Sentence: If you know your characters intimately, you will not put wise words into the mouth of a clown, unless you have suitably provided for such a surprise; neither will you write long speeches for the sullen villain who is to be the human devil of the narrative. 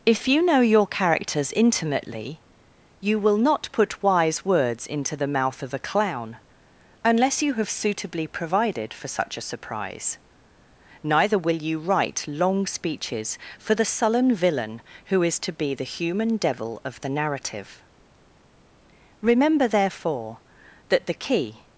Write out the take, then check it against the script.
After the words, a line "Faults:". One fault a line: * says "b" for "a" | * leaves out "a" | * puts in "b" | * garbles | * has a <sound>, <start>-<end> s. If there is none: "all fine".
If you know your characters intimately, you will not put wise words into the mouth of a clown, unless you have suitably provided for such a surprise; neither will you write long speeches for the sullen villain who is to be the human devil of the narrative. Remember, therefore, that the key
Faults:
* puts in "Remember therefore that the key"